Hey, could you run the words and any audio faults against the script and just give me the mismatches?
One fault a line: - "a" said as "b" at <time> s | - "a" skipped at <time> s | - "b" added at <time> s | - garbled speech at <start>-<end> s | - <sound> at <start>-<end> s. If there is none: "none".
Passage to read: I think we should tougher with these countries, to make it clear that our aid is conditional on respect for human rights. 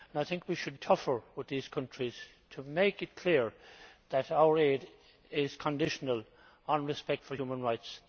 none